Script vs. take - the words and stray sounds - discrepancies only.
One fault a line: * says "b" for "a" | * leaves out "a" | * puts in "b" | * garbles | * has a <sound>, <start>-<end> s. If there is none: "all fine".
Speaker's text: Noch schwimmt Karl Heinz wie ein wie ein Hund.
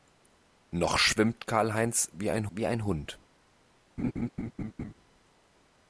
* has a laugh, 4.0-4.9 s